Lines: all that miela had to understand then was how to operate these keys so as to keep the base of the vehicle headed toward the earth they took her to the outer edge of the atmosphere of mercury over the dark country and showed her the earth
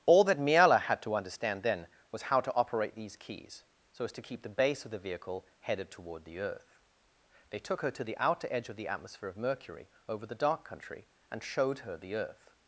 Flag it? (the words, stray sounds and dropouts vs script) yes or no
no